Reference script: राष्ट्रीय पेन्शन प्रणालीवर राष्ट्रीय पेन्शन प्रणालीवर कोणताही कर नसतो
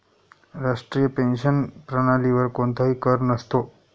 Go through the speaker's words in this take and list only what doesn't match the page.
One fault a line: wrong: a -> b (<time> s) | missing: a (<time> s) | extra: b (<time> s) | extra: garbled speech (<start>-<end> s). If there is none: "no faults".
missing: राष्ट्रीय पेन्शन प्रणालीवर (2.5 s)